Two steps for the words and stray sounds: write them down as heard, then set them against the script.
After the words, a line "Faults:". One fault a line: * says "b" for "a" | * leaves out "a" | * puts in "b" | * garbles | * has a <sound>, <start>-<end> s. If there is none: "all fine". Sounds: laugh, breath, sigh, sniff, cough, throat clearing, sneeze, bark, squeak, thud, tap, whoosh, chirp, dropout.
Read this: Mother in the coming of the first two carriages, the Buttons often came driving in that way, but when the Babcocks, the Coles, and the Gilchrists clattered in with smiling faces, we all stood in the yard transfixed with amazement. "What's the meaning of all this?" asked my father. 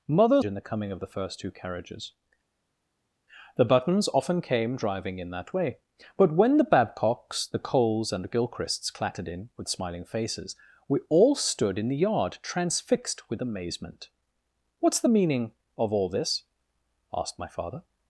Mother in the coming of the first two carriages, the Buttons often came driving in that way, but when the Babcocks, the Coles, and the Gilchrists clattered in with smiling faces, we all stood in the yard transfixed with amazement. "What's the meaning of all this?" asked my father.
Faults:
all fine